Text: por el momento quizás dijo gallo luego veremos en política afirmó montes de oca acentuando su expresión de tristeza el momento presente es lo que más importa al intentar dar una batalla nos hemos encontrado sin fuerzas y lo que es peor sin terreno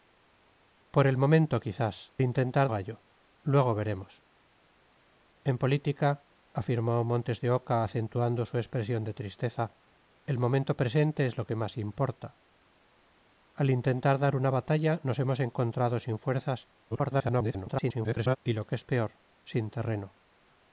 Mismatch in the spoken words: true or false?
true